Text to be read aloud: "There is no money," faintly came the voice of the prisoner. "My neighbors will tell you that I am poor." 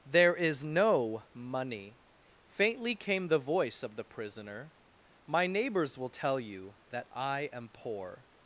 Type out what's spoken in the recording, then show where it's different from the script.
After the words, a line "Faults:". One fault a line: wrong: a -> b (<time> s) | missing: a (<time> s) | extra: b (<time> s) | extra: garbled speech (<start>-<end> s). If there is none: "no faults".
"There is no money," faintly came the voice of the prisoner. "My neighbors will tell you that I am poor."
Faults:
no faults